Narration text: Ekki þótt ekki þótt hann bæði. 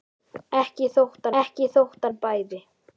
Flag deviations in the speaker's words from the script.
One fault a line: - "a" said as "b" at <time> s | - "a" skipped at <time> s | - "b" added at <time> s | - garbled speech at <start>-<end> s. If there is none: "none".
none